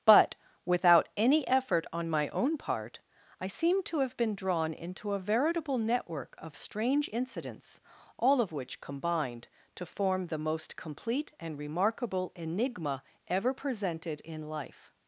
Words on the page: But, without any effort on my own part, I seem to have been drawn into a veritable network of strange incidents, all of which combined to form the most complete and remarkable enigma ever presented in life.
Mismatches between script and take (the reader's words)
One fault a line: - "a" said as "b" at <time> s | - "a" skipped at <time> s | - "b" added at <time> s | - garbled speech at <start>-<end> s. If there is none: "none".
none